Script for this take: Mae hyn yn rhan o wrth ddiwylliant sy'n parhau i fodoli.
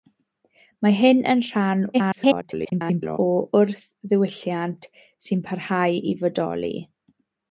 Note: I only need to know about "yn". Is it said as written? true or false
true